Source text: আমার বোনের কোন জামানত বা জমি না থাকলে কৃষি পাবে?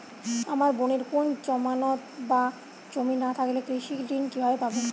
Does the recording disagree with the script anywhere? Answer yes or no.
yes